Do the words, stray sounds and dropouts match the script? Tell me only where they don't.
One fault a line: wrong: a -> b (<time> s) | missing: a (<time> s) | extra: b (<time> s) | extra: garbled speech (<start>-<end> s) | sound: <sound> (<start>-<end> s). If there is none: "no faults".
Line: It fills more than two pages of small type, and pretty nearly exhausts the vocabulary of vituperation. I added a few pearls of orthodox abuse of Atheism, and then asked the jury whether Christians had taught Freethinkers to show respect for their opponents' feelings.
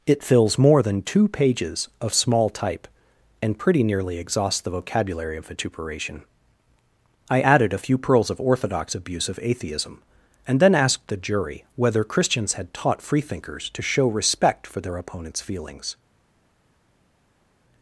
no faults